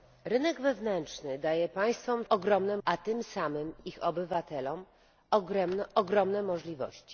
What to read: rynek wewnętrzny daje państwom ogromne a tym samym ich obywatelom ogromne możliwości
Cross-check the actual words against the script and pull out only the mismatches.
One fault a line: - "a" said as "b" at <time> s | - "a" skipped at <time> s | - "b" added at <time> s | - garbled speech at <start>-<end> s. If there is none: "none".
none